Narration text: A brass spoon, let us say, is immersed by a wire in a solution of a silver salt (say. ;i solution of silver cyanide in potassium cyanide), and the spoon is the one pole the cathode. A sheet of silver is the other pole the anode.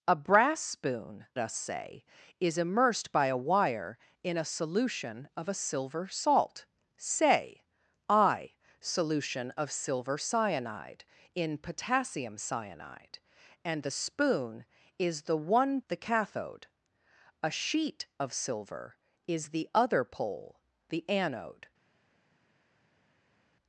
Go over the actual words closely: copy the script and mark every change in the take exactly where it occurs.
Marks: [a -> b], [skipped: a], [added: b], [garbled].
A brass spoon, [skipped: let] us say, is immersed by a wire in a solution of a silver salt (say. ;i solution of silver cyanide in potassium cyanide), and the spoon is the one [skipped: pole] the cathode. A sheet of silver is the other pole the anode.